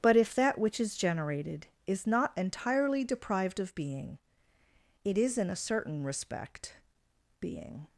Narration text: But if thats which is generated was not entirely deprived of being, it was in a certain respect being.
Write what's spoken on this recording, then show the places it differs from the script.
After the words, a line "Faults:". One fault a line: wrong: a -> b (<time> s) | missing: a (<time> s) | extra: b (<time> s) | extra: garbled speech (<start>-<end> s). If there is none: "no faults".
But if that which is generated is not entirely deprived of being, it is in a certain respect being.
Faults:
wrong: thats -> that (0.3 s)
wrong: was -> is (1.9 s)
wrong: was -> is (5.2 s)